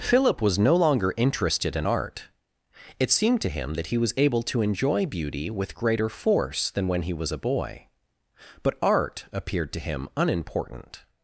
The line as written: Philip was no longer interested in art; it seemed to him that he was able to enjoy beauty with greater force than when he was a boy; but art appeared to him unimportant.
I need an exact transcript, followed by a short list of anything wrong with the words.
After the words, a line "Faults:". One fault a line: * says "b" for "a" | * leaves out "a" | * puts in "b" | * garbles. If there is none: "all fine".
Philip was no longer interested in art; it seemed to him that he was able to enjoy beauty with greater force than when he was a boy; but art appeared to him unimportant.
Faults:
all fine